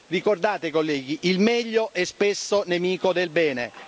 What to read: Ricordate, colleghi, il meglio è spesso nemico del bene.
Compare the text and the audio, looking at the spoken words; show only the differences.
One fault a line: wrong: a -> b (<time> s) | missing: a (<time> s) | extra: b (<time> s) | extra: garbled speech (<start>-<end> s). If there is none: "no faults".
no faults